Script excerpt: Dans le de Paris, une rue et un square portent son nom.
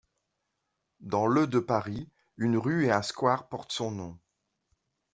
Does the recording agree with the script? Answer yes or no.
yes